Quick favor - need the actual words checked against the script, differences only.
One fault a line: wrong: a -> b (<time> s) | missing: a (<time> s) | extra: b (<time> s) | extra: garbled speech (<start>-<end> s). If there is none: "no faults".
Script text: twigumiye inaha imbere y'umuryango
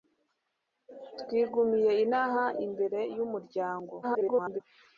extra: garbled speech (4.0-4.6 s)